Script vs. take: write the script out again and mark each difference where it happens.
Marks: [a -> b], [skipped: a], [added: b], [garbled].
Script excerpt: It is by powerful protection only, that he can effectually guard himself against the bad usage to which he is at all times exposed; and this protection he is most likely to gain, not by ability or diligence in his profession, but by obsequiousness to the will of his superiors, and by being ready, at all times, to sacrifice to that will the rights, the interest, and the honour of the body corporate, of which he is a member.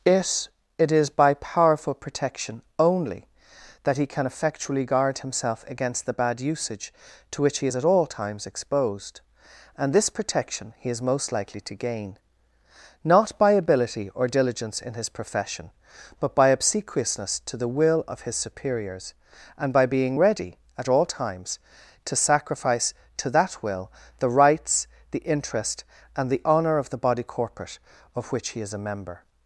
It [added: it] is by powerful protection only, that he can effectually guard himself against the bad usage to which he is at all times exposed; and this protection he is most likely to gain, not by ability or diligence in his profession, but by obsequiousness to the will of his superiors, and by being ready, at all times, to sacrifice to that will the rights, the interest, and the honour of the body corporate, of which he is a member.